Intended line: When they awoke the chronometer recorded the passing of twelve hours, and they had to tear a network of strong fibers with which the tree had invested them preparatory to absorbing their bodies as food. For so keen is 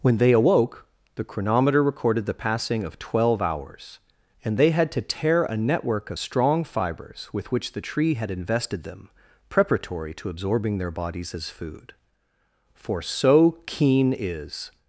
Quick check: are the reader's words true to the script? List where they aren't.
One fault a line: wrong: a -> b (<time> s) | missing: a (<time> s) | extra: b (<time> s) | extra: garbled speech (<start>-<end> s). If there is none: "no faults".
no faults